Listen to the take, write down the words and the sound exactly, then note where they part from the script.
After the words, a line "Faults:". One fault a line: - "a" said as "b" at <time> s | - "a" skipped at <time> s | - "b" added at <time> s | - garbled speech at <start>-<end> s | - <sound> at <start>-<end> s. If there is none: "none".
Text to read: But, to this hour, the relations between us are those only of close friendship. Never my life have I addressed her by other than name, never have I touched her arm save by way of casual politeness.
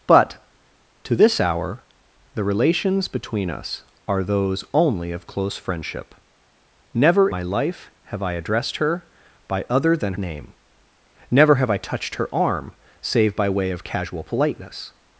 But, to this hour, the relations between us are those only of close friendship. Never my life have I addressed her by other than name, never have I touched her arm save by way of casual politeness.
Faults:
none